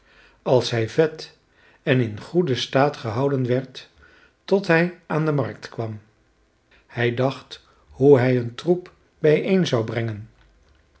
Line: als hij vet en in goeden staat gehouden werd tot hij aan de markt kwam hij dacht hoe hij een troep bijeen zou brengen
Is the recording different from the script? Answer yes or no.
no